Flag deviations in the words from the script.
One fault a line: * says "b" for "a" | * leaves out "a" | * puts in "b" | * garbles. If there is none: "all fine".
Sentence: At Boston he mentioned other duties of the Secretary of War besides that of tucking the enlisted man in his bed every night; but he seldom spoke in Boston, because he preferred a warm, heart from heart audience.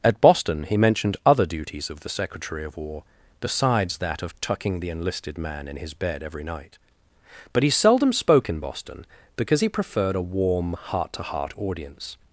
* says "to" for "from"